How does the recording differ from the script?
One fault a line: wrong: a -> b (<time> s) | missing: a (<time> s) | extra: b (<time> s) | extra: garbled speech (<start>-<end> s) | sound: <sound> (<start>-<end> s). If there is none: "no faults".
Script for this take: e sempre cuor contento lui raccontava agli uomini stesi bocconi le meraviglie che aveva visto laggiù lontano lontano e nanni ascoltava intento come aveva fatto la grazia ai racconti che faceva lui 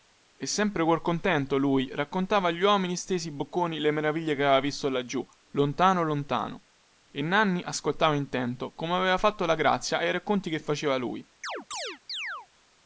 sound: chirp (11.4-12.5 s)